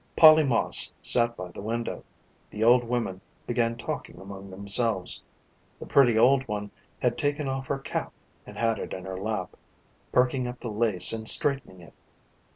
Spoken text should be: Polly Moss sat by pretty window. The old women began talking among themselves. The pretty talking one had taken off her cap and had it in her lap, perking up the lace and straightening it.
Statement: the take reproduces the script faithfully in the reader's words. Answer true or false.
false